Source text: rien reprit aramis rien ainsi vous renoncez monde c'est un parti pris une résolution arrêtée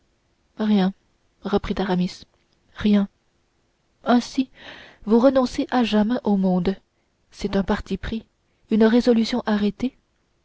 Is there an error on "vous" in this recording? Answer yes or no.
no